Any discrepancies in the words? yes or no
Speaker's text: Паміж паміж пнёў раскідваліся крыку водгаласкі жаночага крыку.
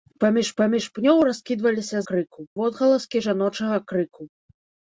no